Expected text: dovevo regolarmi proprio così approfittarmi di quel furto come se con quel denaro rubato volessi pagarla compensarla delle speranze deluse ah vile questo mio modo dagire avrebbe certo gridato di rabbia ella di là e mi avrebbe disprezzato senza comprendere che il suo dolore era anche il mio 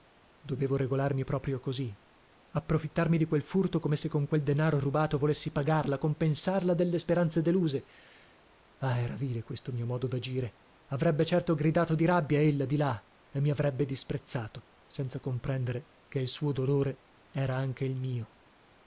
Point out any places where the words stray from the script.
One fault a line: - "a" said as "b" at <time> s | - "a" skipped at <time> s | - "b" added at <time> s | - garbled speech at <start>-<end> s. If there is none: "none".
- "era" added at 9.0 s